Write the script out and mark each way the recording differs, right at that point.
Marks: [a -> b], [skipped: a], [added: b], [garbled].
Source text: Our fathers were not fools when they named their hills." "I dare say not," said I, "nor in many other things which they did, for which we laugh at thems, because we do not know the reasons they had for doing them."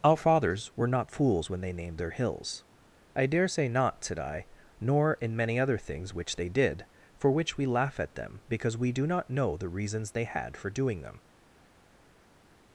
Our fathers were not fools when they named their hills." "I dare say not," said I, "nor in many other things which they did, for which we laugh at [thems, -> them] because we do not know the reasons they had for doing them."